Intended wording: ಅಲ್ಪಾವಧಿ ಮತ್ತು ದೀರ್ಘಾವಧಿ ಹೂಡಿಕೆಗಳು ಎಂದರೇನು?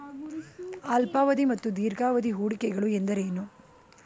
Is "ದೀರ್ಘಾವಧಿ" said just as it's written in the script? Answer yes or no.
yes